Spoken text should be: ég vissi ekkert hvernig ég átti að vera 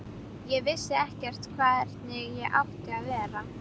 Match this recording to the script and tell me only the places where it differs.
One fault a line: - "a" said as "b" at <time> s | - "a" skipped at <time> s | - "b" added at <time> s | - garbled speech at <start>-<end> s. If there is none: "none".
none